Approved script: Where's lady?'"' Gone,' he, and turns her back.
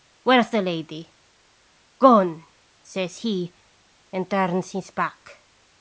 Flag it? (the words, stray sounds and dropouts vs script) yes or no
yes